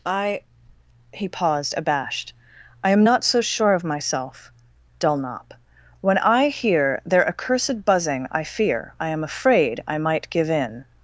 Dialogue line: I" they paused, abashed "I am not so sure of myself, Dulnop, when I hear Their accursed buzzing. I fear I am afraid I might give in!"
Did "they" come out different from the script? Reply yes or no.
yes